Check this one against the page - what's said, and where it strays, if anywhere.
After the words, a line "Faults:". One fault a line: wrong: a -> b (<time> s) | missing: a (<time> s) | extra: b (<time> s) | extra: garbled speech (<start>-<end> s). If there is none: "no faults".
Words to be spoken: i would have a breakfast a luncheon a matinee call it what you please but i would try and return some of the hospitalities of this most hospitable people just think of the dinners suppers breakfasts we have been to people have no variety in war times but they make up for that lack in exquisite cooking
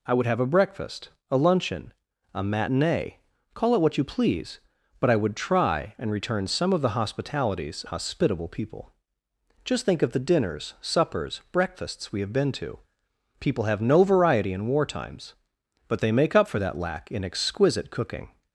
i would have a breakfast a luncheon a matinee call it what you please but i would try and return some of the hospitalities hospitable people just think of the dinners suppers breakfasts we have been to people have no variety in war times but they make up for that lack in exquisite cooking
Faults:
missing: of this most (7.8 s)